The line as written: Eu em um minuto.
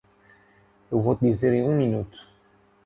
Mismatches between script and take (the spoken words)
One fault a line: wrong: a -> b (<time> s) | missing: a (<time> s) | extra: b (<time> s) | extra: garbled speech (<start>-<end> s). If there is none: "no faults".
extra: vou te dizer (1.0 s)